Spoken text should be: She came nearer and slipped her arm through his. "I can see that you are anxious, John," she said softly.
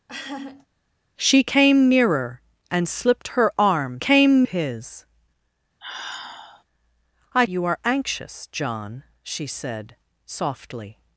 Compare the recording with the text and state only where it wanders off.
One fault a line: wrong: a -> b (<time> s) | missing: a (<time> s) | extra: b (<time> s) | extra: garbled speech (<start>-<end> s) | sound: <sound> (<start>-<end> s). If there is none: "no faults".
sound: laugh (0.1-0.7 s)
wrong: through -> came (4.0 s)
sound: sigh (5.8-6.6 s)
missing: can see that (7.4 s)